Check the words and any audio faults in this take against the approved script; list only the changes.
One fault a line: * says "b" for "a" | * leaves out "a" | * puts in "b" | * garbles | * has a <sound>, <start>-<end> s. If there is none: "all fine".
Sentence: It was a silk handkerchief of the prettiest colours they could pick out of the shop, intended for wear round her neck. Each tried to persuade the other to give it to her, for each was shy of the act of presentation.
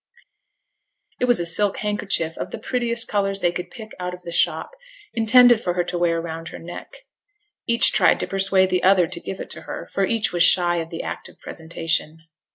* puts in "her to"